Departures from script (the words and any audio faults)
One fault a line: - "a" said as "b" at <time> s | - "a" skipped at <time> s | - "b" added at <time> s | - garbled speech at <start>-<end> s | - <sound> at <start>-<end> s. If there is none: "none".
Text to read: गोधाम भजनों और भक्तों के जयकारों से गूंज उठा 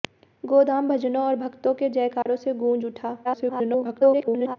- dropout at 2.2-2.3 s
- garbled speech at 3.2-4.6 s